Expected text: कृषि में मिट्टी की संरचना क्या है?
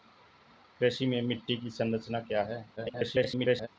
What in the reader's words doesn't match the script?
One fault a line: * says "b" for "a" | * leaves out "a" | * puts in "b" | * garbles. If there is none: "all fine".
* garbles